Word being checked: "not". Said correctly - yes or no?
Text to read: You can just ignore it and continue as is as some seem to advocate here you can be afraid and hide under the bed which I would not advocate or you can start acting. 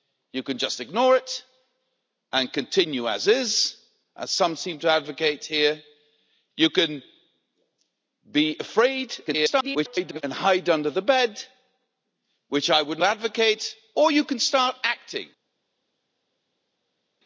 no